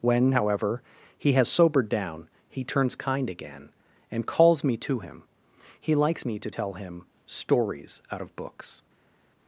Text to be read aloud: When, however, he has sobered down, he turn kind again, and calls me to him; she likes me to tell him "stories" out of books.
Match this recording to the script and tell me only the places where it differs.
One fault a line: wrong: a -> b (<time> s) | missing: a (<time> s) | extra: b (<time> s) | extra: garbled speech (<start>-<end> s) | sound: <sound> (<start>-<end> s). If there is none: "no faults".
wrong: turn -> turns (2.6 s)
wrong: she -> he (5.8 s)